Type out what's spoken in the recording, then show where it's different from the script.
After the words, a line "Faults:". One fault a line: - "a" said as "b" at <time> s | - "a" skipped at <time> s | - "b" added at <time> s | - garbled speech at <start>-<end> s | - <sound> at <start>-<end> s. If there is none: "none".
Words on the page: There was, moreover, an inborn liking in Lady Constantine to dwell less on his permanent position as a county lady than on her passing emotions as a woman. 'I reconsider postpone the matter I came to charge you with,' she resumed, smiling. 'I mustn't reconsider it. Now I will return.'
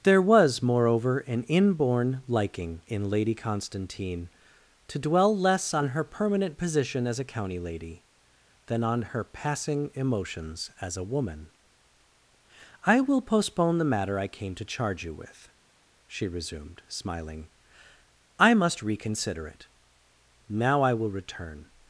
There was, moreover, an inborn liking in Lady Constantine to dwell less on her permanent position as a county lady than on her passing emotions as a woman. 'I will postpone the matter I came to charge you with,' she resumed, smiling. 'I must reconsider it. Now I will return.'
Faults:
- "his" said as "her" at 5.9 s
- "reconsider" said as "will" at 13.0 s
- "mustn't" said as "must" at 18.6 s